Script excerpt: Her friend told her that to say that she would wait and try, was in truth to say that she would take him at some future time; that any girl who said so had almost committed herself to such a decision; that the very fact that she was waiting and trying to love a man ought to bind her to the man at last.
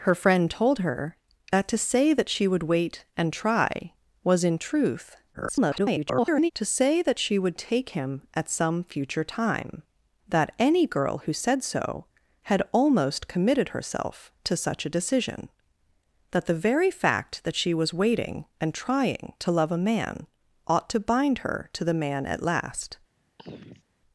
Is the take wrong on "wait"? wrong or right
right